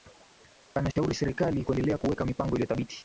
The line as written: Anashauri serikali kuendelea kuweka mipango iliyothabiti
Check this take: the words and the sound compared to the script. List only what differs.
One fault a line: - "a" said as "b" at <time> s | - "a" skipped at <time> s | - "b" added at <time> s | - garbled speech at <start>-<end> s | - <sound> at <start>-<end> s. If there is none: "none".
- dropout at 0.9-1.0 s